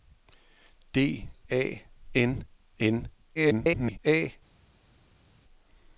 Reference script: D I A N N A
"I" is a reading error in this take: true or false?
true